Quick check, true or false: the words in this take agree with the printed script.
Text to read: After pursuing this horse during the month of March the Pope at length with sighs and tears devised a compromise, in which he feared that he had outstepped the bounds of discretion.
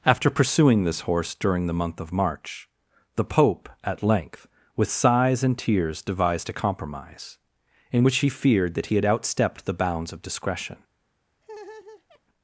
true